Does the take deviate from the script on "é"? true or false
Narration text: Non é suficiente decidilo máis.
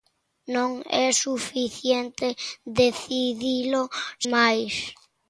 false